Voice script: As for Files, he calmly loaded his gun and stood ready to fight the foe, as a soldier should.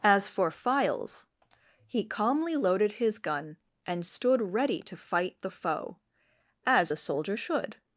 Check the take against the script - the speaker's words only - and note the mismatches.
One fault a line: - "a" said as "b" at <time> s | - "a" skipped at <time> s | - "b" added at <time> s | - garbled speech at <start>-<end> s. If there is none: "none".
none